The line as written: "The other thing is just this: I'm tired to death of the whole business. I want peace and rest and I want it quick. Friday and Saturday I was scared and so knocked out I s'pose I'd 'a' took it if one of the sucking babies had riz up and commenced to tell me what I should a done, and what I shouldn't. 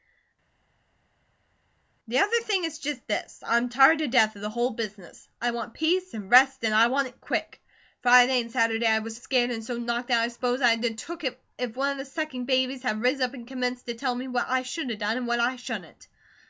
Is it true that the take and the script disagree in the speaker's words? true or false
false